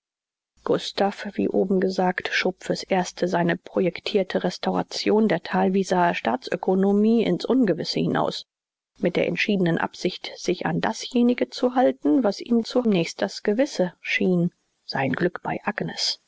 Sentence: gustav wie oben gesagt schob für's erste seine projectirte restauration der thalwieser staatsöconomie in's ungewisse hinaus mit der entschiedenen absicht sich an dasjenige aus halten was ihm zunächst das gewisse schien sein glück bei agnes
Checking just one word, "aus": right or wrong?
wrong